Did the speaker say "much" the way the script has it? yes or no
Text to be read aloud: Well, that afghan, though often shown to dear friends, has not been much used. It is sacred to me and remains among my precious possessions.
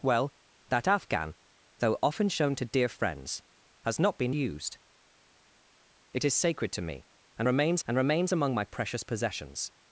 no